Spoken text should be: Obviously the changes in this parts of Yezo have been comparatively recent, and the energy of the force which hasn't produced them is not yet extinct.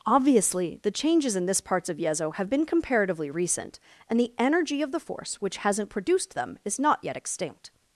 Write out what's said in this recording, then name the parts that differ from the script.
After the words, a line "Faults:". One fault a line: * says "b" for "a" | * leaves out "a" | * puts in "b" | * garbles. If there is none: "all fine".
Obviously the changes in this parts of Yezo have been comparatively recent, and the energy of the force which hasn't produced them is not yet extinct.
Faults:
all fine